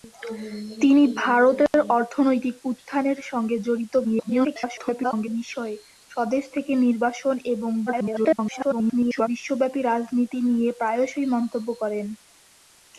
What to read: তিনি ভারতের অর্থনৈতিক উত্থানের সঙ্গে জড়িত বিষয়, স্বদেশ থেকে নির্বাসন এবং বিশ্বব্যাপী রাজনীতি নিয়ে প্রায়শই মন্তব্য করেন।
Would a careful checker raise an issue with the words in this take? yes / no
yes